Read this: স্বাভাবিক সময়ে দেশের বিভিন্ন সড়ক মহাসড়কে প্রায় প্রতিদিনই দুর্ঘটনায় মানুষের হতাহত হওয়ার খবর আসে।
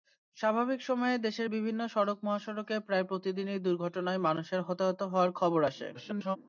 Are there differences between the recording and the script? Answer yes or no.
yes